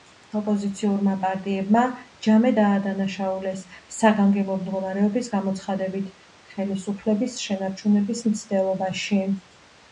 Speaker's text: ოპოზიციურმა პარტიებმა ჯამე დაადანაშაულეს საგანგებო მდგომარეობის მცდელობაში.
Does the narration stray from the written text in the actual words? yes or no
yes